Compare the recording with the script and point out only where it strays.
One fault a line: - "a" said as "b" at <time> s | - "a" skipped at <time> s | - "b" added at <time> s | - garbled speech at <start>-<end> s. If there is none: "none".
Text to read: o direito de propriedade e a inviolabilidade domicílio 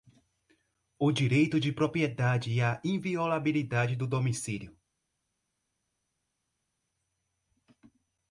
- "do" added at 4.0 s